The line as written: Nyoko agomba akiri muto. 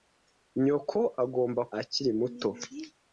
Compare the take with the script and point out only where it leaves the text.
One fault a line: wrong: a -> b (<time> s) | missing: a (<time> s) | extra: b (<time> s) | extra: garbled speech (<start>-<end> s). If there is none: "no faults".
no faults